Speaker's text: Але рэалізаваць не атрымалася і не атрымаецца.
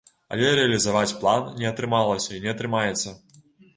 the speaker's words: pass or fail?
fail